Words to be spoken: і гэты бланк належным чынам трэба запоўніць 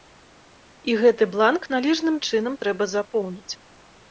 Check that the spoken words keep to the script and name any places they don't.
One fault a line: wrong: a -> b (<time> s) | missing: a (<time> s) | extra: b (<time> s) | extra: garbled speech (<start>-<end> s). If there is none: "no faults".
no faults